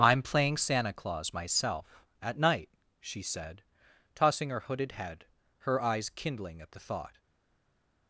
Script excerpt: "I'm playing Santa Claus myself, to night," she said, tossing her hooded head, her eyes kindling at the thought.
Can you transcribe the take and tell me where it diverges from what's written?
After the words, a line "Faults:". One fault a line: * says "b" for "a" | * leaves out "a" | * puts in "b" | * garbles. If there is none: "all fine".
"I'm playing Santa Claus myself, at night," she said, tossing her hooded head, her eyes kindling at the thought.
Faults:
* says "at" for "to"